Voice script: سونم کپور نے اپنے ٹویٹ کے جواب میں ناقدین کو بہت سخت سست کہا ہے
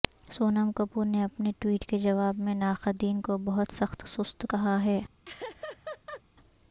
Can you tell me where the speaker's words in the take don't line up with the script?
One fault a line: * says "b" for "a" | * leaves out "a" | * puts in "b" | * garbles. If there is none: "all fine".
all fine